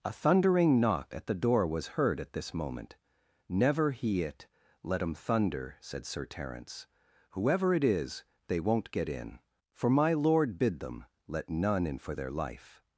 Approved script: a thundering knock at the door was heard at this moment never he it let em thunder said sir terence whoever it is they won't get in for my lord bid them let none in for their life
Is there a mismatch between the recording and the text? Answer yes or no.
no